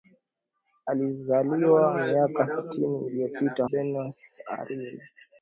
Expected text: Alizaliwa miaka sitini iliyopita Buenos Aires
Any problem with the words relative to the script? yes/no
no